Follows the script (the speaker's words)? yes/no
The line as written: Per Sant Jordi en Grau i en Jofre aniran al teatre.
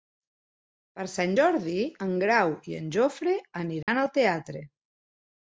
yes